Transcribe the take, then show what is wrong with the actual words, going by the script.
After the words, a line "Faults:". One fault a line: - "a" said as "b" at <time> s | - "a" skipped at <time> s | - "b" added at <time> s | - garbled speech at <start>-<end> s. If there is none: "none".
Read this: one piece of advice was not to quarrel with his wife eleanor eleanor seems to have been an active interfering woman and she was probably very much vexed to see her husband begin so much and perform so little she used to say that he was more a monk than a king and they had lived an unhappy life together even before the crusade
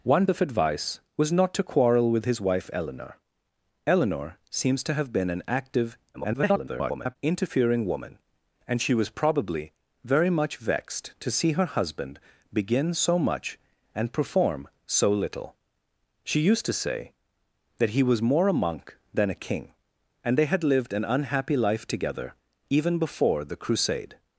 one of advice was not to quarrel with his wife eleanor eleanor seems to have been an active [garbled] interfering woman and she was probably very much vexed to see her husband begin so much and perform so little she used to say that he was more a monk than a king and they had lived an unhappy life together even before the crusade
Faults:
- "piece" skipped at 0.2 s
- garbled speech at 6.1-7.2 s